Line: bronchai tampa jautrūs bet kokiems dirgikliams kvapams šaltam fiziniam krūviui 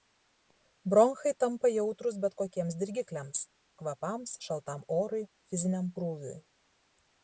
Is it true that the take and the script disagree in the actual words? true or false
true